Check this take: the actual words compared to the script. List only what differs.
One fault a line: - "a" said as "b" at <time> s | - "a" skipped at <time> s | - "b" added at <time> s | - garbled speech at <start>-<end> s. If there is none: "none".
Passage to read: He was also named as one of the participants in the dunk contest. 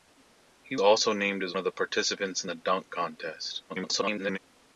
- "was" skipped at 0.8 s
- "one" skipped at 1.6 s
- garbled speech at 3.7-4.4 s